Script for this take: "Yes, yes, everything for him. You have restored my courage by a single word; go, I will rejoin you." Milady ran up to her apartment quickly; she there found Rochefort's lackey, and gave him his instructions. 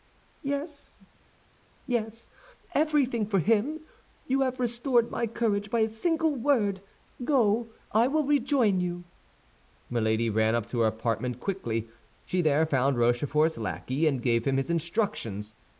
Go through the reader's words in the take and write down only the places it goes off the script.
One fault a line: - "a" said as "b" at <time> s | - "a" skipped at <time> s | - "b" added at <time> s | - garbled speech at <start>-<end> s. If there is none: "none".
none